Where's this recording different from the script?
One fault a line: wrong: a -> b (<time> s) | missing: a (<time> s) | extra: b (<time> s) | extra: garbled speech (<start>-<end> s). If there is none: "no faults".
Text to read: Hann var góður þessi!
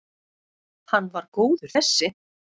no faults